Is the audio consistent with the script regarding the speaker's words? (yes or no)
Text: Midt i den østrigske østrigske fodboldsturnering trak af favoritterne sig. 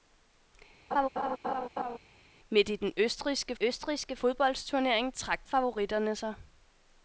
yes